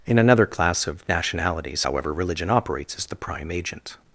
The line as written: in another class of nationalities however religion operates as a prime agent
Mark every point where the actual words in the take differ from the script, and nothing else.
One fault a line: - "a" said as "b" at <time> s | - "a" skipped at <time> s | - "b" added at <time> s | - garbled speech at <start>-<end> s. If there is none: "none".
- "a" said as "the" at 3.1 s